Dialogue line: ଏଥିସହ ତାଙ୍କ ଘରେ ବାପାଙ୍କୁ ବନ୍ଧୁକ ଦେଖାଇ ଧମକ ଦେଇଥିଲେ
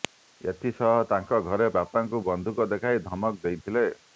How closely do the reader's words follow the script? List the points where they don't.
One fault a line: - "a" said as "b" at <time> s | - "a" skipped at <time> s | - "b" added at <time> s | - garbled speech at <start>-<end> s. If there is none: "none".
none